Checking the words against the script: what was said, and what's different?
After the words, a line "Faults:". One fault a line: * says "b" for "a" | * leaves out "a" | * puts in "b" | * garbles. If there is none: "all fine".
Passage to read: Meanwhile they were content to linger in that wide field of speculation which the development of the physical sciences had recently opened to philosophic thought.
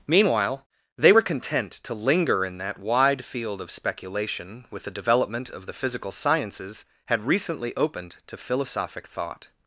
Meanwhile they were content to linger in that wide field of speculation with the development of the physical sciences had recently opened to philosophic thought.
Faults:
* says "with" for "which"